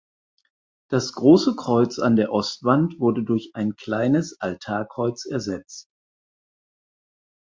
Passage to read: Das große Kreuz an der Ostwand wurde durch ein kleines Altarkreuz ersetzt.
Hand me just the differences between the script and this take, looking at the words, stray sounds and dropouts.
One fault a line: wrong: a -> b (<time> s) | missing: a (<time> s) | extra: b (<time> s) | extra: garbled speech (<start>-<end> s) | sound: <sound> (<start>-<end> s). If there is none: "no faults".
no faults